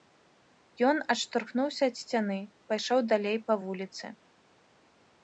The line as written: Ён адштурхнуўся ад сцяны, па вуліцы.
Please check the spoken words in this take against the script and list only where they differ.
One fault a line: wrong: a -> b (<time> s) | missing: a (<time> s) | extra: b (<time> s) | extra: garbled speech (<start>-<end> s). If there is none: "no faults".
extra: пайшоў далей (2.7 s)